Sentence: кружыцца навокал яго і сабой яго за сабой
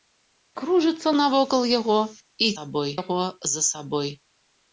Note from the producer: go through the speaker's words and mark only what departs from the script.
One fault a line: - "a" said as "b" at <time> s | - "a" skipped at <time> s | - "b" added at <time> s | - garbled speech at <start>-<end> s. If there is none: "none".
none